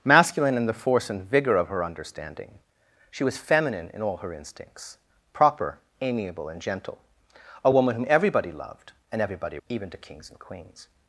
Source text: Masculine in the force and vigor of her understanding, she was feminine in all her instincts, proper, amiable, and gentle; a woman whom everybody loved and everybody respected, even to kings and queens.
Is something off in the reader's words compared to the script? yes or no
yes